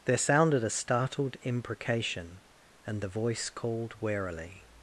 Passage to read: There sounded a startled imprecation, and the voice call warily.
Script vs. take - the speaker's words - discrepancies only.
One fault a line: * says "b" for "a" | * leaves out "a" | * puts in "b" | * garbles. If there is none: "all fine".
* says "called" for "call"